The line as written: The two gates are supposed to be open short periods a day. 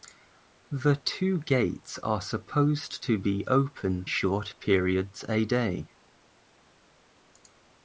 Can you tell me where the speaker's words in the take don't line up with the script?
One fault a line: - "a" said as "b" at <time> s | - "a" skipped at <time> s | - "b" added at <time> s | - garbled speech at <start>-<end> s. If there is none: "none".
none